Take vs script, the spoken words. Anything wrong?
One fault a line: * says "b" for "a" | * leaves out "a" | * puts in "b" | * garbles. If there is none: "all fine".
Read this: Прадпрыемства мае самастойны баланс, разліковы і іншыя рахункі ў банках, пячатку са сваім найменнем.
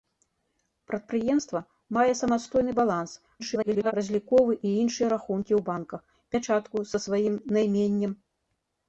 * garbles